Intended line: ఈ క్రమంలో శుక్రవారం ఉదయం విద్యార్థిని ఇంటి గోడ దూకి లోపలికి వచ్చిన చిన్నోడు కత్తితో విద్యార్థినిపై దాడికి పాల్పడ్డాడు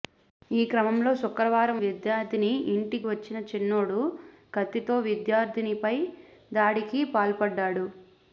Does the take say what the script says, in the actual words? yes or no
no